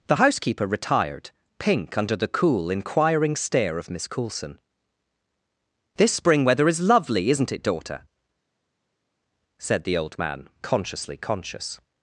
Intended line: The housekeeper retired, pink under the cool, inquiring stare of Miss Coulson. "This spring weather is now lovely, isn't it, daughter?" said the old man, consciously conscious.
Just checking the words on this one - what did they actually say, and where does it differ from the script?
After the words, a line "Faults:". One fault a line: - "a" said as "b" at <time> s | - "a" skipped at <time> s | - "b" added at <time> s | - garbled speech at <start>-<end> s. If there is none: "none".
The housekeeper retired, pink under the cool, inquiring stare of Miss Coulson. "This spring weather is lovely, isn't it, daughter?" said the old man, consciously conscious.
Faults:
- "now" skipped at 6.8 s